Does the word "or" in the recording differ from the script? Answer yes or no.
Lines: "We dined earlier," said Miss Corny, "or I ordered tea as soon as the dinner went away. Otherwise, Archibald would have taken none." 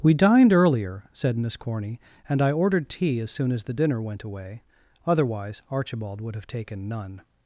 yes